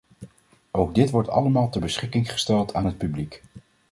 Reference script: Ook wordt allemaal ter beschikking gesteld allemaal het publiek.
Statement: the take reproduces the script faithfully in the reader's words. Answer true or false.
false